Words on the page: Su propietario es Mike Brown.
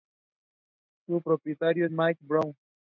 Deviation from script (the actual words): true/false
false